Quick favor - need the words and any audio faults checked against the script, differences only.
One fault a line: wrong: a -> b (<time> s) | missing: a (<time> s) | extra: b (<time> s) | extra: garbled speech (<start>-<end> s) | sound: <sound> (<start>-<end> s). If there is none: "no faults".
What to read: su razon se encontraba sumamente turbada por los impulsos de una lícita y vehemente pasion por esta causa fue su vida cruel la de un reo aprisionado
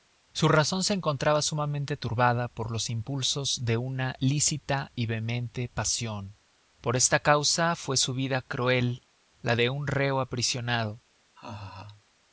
sound: laugh (11.4-12.0 s)